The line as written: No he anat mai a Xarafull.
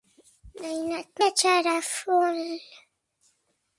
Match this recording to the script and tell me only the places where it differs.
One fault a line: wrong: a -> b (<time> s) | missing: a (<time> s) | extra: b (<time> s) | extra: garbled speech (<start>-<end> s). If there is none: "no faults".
missing: mai (1.2 s)